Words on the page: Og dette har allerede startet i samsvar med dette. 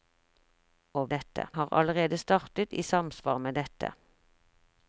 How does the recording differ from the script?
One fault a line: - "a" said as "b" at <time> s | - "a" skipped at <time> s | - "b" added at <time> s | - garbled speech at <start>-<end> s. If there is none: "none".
none